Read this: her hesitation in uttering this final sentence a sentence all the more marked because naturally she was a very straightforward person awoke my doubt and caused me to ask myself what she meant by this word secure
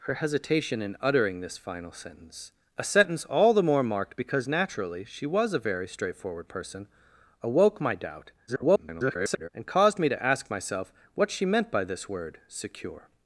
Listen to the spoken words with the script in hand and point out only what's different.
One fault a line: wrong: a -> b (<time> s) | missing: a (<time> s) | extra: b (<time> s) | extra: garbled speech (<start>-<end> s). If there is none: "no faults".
extra: garbled speech (8.5-9.5 s)